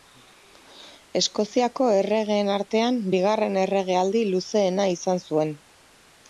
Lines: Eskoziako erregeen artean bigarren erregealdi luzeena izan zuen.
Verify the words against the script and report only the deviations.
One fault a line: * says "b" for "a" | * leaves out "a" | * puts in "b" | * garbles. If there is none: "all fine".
all fine